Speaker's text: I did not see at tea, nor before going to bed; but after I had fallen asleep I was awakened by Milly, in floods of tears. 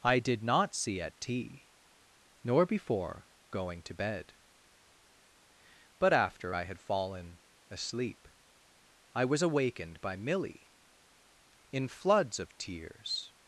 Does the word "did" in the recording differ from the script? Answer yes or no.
no